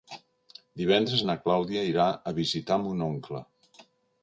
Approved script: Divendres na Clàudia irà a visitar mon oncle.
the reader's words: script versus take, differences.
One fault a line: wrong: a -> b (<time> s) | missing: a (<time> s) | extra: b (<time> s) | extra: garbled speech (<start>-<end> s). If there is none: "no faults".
no faults